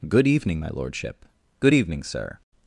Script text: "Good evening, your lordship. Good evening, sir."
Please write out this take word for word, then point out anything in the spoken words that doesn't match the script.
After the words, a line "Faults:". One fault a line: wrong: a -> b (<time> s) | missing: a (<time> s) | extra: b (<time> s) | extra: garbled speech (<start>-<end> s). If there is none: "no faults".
"Good evening, my lordship. Good evening, sir."
Faults:
wrong: your -> my (0.6 s)